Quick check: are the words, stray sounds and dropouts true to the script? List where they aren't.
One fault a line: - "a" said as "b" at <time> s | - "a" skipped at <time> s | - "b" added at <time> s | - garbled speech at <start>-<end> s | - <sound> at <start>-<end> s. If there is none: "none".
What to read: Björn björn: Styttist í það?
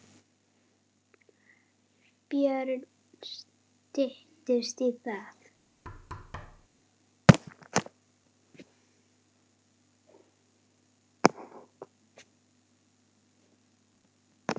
- "björn" skipped at 2.8 s
- thud at 5.8-6.7 s